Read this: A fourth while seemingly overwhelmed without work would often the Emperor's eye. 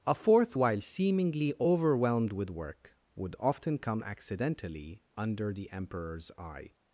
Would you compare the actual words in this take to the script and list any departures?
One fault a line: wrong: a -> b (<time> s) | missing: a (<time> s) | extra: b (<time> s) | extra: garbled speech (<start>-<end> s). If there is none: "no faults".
wrong: without -> with (2.3 s)
extra: come accidentally under (3.8 s)